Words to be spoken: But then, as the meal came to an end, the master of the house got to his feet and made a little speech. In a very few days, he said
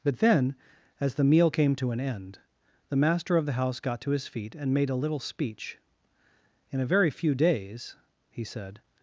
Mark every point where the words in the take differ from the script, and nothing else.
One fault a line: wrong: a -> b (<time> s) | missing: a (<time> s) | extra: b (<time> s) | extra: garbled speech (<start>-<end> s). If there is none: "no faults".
no faults